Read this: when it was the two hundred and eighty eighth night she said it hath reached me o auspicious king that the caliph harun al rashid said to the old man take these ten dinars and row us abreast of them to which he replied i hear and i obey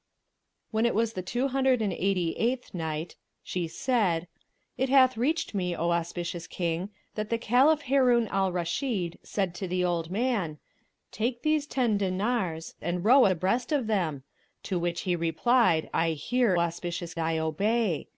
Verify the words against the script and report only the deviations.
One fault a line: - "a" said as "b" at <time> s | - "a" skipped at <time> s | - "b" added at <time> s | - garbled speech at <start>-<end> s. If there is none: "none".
- "us" skipped at 13.3 s
- "and" said as "auspicious" at 16.6 s